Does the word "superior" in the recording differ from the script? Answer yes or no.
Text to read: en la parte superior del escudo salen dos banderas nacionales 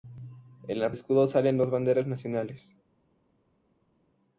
yes